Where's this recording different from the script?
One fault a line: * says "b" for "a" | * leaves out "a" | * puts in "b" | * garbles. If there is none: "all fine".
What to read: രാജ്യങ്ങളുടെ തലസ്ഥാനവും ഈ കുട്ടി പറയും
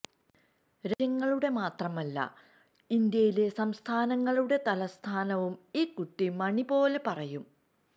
* puts in "മാത്രമല്ല ഇന്ത്യയിലെ സംസ്ഥാനങ്ങളുടെ"
* puts in "മണി പോലെ"